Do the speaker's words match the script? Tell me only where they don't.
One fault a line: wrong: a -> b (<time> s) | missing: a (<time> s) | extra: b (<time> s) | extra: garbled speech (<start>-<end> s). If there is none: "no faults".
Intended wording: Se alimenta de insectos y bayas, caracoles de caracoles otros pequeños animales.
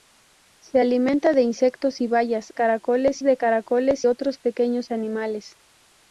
no faults